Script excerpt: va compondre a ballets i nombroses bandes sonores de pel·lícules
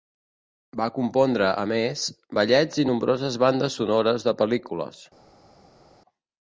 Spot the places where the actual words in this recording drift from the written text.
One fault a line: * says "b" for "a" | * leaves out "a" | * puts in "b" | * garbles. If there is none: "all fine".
* puts in "més"